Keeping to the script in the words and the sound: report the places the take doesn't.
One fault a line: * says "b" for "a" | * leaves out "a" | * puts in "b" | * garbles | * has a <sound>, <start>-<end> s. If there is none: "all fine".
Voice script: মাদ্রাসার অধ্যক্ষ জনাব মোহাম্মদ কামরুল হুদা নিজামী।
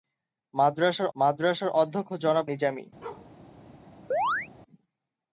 * puts in "মাদ্রাসার"
* leaves out "মোহাম্মদ কামরুল হুদা"
* has a bark, 3.0-3.3 s
* has a chirp, 4.1-4.5 s